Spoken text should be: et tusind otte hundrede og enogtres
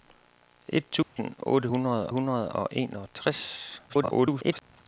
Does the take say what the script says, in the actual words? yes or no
no